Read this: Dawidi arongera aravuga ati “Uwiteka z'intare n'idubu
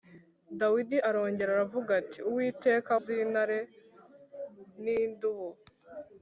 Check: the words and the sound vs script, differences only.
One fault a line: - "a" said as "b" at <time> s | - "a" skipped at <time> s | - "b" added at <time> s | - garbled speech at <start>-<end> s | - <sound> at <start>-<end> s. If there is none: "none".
none